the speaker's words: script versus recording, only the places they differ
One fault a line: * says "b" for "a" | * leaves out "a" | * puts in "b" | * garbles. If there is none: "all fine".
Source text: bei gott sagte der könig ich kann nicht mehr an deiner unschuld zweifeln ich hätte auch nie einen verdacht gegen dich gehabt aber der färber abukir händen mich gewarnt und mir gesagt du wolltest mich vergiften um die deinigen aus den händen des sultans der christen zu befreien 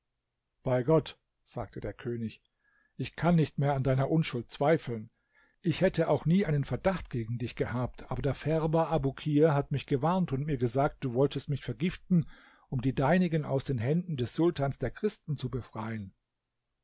* says "hat" for "händen"